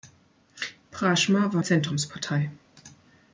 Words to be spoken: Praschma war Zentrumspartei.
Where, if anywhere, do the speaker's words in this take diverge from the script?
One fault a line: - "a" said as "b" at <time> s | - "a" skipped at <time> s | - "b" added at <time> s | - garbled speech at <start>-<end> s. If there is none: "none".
none